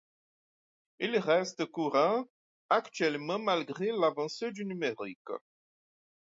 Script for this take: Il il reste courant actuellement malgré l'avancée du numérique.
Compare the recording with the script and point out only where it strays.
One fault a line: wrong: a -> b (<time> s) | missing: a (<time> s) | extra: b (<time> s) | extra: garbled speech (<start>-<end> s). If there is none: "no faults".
missing: il (1.1 s)